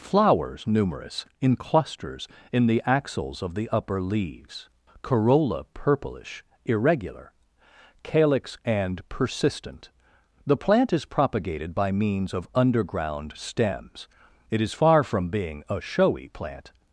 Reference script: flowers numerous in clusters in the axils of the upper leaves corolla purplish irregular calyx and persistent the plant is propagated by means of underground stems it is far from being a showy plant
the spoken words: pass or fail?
pass